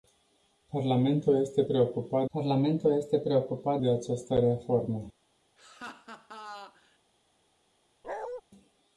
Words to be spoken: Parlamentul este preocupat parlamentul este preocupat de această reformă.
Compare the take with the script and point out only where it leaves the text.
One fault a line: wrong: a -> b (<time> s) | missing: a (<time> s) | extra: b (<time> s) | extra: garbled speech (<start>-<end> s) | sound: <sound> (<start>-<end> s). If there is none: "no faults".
sound: laugh (5.6-7.0 s)
sound: bark (8.0-8.4 s)